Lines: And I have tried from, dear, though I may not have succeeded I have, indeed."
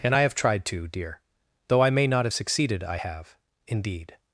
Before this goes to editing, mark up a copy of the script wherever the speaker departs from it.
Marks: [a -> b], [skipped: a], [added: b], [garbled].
And I have tried [from, -> to] dear, though I may not have succeeded I have, indeed."